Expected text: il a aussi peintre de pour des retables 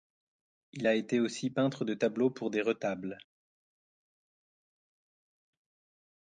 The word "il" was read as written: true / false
true